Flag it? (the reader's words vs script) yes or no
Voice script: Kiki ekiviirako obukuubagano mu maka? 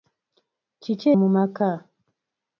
yes